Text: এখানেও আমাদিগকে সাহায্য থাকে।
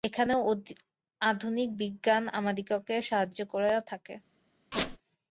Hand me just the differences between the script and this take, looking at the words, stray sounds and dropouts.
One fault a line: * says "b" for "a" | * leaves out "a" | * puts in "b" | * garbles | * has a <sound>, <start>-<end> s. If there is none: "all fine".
* puts in "আধুনিক বিজ্ঞান"
* puts in "করিয়া"
* has a squeak, 4.7-5.0 s